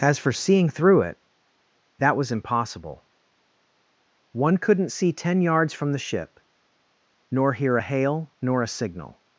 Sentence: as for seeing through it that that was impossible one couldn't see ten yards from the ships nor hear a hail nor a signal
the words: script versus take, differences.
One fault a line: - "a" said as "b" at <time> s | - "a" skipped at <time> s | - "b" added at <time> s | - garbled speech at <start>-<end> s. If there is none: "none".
- "that" skipped at 2.2 s
- "ships" said as "ship" at 6.0 s